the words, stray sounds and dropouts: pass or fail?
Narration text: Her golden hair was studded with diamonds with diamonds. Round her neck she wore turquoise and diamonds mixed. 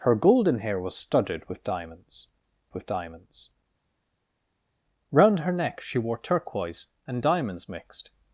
pass